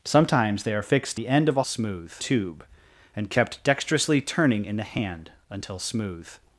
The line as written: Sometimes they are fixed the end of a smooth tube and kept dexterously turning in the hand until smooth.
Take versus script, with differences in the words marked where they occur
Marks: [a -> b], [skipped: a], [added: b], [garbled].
Sometimes they are fixed the end of a smooth tube and kept dexterously turning in the hand until smooth.